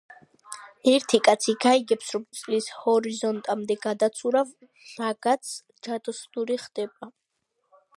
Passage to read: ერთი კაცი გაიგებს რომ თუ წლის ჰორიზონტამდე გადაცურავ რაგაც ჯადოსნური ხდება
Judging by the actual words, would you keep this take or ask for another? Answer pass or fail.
fail